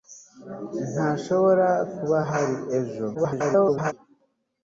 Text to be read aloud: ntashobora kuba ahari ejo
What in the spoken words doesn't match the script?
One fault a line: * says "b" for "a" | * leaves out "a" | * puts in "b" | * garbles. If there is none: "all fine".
* garbles